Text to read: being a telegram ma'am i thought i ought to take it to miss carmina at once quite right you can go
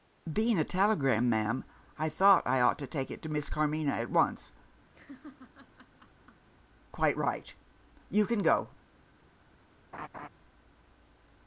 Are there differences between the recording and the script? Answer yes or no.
no